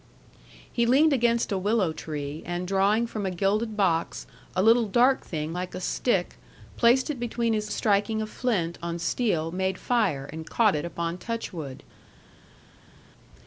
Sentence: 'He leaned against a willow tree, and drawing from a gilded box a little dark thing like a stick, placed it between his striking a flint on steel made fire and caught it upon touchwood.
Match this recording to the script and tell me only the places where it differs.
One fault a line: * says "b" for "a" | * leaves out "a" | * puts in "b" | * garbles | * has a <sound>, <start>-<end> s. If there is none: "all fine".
all fine